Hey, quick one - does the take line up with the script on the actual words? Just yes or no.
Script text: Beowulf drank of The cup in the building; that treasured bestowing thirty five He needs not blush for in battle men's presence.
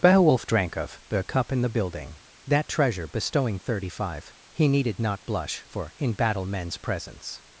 no